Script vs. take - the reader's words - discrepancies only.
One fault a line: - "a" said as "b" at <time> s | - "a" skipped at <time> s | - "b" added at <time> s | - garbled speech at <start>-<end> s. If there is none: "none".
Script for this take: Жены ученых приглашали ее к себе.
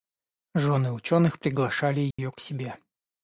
none